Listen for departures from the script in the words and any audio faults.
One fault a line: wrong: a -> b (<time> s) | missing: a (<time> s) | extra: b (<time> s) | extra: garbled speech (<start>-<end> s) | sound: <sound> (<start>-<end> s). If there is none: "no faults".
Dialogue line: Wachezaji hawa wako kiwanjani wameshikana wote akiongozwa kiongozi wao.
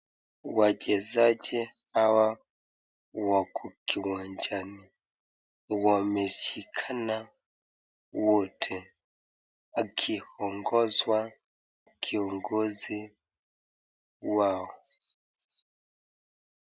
no faults